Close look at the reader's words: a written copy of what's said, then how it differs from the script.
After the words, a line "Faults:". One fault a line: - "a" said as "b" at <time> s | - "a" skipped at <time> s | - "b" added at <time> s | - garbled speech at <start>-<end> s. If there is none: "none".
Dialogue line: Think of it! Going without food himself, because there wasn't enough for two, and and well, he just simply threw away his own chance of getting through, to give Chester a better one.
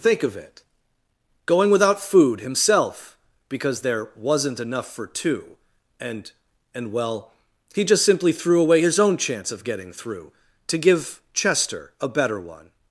Think of it! Going without food himself, because there wasn't enough for two, and and well, he just simply threw away his own chance of getting through, to give Chester a better one.
Faults:
none